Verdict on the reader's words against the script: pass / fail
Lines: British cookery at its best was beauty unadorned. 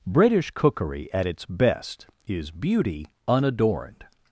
fail